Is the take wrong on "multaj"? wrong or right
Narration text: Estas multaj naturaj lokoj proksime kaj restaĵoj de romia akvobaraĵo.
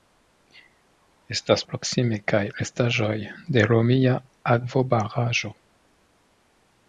wrong